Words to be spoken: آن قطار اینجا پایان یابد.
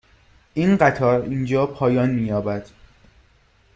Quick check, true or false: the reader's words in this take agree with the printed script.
false